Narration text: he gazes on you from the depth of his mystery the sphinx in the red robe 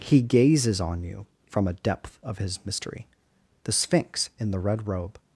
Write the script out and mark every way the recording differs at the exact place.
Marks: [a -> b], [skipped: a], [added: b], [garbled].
he gazes on you from [the -> a] depth of his mystery the sphinx in the red robe